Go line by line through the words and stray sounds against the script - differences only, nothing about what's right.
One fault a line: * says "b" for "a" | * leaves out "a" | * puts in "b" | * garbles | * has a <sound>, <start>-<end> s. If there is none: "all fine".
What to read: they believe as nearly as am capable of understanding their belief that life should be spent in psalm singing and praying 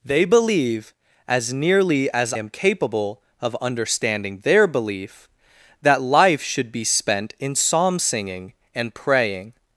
all fine